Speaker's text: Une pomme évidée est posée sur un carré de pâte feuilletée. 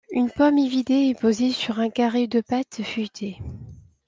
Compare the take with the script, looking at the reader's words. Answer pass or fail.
pass